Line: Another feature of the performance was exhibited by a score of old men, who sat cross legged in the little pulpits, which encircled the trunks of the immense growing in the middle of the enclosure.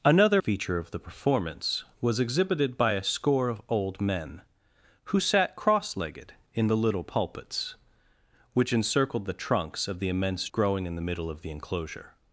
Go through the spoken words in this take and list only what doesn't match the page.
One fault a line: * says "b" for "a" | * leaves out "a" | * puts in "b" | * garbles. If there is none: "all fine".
all fine